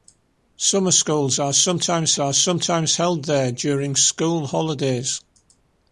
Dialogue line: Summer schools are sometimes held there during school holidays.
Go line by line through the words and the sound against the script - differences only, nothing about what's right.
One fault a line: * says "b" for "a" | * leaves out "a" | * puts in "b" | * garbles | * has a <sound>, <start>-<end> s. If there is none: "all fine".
* puts in "are sometimes"